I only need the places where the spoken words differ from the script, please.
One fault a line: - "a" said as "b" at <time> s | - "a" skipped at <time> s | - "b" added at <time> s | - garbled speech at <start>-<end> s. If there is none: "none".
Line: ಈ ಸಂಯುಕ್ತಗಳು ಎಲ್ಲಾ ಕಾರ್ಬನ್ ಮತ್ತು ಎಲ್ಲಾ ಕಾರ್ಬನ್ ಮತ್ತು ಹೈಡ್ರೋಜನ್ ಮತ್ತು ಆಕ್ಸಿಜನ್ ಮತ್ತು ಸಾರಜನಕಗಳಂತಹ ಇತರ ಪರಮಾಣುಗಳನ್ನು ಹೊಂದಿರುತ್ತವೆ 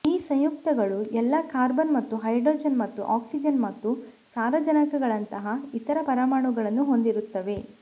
- "ಎಲ್ಲಾ ಕಾರ್ಬನ್ ಮತ್ತು" skipped at 2.1 s